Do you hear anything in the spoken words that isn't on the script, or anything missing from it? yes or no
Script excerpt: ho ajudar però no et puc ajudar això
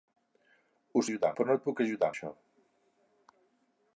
no